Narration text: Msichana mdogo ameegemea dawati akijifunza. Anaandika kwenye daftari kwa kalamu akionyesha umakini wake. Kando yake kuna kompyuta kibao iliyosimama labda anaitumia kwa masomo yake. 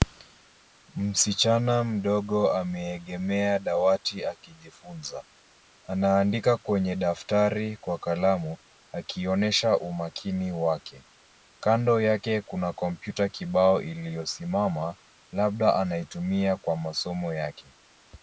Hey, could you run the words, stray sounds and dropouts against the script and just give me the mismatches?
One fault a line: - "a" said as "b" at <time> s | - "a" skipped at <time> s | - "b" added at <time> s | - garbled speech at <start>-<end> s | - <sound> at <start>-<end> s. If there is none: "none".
none